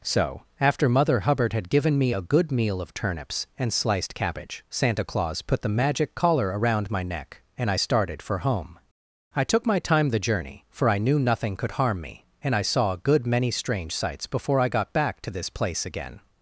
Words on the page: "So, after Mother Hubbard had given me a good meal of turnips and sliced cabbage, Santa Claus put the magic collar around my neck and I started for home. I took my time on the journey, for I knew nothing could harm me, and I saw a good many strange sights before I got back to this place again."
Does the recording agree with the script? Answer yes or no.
no